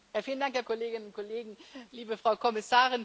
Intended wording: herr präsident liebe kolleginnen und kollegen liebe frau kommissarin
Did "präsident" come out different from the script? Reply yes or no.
yes